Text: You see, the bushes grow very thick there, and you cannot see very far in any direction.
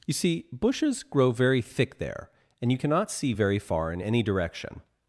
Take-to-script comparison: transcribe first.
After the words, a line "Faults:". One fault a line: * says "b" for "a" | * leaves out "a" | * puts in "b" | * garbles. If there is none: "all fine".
You see, bushes grow very thick there, and you cannot see very far in any direction.
Faults:
* leaves out "the"